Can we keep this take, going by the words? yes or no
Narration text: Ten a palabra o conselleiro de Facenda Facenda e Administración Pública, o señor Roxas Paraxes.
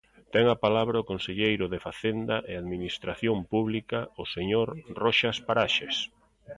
no